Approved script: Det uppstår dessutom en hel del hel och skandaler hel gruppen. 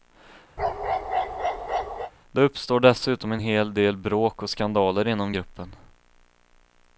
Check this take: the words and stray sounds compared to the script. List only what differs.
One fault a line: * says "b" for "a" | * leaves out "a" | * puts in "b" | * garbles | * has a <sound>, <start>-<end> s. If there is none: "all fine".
* has a bark, 0.6-2.1 s
* says "bråk" for "hel"
* says "inom" for "hel"